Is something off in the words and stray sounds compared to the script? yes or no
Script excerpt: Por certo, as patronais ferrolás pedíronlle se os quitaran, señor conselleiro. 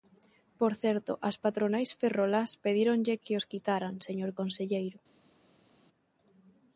yes